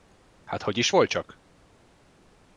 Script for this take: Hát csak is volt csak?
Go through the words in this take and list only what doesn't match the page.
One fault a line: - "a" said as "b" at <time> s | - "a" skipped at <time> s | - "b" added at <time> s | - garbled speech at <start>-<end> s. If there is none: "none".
- "csak" said as "hogy" at 0.6 s